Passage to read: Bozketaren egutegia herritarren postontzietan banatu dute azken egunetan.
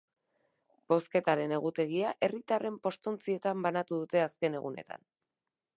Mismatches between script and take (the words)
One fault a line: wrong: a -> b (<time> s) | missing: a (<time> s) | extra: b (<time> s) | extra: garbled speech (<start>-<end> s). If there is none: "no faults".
no faults